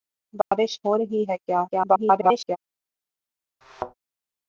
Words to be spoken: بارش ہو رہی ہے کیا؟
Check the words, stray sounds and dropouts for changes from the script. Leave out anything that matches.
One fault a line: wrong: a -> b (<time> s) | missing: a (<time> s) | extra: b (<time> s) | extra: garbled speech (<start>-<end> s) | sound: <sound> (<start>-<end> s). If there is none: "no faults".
sound: dropout (0.4-0.5 s)
extra: garbled speech (1.7-2.6 s)
sound: thud (3.6-3.9 s)